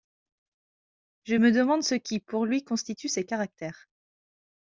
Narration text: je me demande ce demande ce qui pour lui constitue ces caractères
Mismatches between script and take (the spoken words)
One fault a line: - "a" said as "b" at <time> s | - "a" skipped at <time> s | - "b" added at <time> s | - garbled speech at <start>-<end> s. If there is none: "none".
- "demande ce" skipped at 1.9 s